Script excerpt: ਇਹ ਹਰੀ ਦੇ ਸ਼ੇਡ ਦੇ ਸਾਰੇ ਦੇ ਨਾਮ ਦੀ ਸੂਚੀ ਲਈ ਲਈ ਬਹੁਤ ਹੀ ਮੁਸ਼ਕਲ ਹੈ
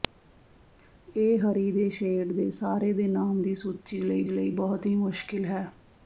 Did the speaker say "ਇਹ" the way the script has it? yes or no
yes